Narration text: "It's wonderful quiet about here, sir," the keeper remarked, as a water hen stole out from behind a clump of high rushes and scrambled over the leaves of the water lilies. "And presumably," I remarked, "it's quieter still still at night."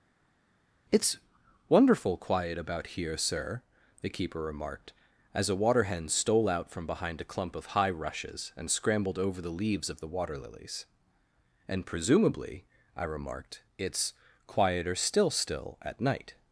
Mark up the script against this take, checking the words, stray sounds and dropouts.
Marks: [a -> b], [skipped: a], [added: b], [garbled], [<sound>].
"It's wonderful quiet about here, sir," the keeper remarked, as a water hen stole out from behind a clump of high rushes and scrambled over the leaves of the water lilies. "And presumably," I remarked, "it's quieter still still at night."